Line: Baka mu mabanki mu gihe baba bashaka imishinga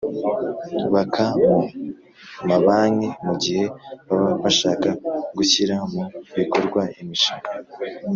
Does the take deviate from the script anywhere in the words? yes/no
yes